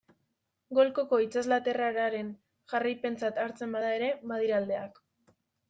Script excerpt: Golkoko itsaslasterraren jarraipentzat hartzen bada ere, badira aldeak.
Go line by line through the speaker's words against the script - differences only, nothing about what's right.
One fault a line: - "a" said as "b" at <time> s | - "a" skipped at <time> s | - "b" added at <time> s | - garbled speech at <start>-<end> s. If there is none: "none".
none